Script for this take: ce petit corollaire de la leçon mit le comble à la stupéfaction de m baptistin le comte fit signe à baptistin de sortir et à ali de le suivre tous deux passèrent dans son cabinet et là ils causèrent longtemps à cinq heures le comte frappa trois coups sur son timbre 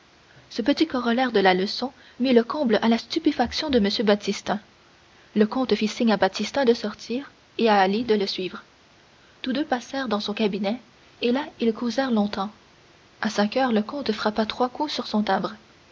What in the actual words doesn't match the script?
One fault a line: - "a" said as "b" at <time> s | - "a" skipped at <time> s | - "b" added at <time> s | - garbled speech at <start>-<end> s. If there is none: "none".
none